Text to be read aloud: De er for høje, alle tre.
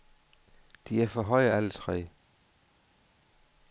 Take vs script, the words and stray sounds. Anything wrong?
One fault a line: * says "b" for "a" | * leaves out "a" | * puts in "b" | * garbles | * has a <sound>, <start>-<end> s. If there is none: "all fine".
all fine